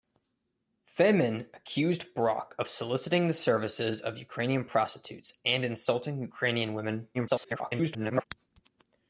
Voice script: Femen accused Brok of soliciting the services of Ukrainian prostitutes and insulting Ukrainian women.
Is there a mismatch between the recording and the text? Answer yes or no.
yes